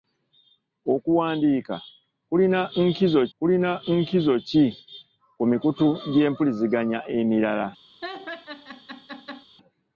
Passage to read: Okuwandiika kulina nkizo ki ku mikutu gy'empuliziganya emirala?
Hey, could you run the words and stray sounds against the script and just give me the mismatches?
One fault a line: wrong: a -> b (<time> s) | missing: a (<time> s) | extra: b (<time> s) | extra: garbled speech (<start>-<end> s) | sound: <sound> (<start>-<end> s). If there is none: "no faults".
extra: kulina nkizo (3.4 s)
sound: laugh (8.0-9.5 s)